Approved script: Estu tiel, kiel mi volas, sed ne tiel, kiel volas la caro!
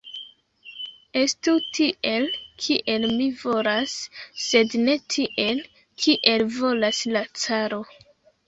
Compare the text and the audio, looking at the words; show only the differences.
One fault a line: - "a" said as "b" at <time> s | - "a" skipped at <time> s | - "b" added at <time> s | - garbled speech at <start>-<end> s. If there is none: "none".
none